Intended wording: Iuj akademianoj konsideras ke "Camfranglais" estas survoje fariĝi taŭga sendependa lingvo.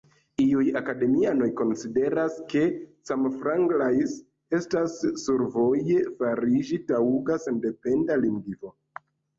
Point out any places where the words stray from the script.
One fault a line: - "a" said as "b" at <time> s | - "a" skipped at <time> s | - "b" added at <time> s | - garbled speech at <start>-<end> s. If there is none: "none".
none